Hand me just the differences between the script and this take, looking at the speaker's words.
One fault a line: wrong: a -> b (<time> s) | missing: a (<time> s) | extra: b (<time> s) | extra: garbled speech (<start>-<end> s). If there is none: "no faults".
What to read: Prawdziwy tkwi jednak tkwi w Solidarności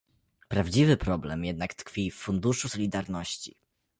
wrong: tkwi -> problem (0.9 s)
extra: Funduszu (2.1 s)